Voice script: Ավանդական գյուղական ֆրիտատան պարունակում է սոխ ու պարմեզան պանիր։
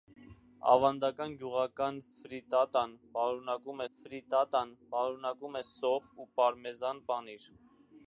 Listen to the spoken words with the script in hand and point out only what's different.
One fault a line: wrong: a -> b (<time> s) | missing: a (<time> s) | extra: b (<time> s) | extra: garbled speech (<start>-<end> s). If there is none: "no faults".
extra: ֆրիտատան պարունակում (3.9 s)